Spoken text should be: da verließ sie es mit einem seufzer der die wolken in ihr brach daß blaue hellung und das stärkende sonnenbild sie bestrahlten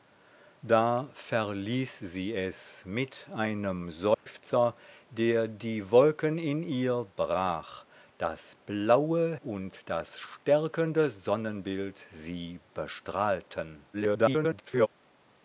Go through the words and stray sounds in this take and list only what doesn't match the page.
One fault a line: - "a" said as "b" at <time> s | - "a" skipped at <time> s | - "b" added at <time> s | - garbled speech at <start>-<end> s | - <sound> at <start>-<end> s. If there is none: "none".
- dropout at 4.1-4.3 s
- "hellung" skipped at 9.3 s
- garbled speech at 13.9-14.9 s